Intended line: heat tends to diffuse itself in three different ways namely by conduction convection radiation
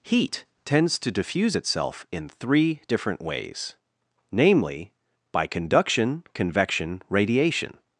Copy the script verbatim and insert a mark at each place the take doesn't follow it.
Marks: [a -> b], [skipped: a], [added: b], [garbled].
heat tends to diffuse itself in three different ways namely by conduction convection radiation